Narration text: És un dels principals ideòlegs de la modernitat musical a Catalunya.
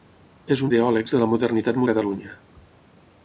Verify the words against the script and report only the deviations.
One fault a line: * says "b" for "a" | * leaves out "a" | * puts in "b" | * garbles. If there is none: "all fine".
* leaves out "dels principals"
* leaves out "musical"